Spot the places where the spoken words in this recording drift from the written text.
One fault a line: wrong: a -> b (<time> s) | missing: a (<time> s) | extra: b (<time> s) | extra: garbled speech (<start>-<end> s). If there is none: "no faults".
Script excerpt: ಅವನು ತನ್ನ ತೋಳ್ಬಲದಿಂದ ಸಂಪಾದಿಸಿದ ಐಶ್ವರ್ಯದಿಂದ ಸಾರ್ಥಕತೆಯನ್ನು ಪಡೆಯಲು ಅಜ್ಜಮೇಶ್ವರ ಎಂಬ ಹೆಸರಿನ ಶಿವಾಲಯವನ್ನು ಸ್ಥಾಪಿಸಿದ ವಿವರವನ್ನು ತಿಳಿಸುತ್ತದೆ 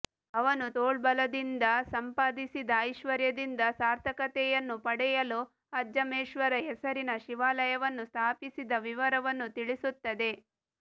missing: ತನ್ನ (0.7 s)
missing: ಎಂಬ (6.5 s)